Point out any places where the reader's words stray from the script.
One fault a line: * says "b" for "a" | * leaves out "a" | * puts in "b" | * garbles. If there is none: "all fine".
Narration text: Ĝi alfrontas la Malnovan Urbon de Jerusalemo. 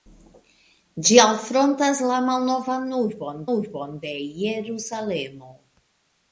* puts in "Urbon"